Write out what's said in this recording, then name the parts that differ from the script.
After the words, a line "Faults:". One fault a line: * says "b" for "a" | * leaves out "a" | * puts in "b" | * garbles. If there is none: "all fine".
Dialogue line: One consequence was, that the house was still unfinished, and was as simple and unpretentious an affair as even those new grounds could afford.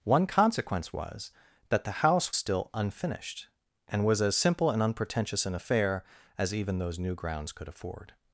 One consequence was, that the house still unfinished, and was as simple and unpretentious an affair as even those new grounds could afford.
Faults:
* leaves out "was"